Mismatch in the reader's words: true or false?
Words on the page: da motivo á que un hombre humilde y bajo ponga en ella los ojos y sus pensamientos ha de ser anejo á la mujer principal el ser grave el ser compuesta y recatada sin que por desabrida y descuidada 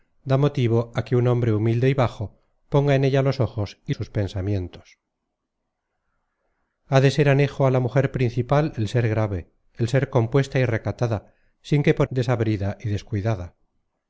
false